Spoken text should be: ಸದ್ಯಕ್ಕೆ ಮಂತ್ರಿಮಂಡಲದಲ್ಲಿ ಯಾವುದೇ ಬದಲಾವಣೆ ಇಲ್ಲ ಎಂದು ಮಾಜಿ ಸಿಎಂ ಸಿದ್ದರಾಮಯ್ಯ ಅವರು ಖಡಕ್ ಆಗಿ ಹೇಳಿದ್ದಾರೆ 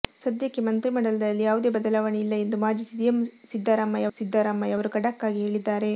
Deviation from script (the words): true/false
true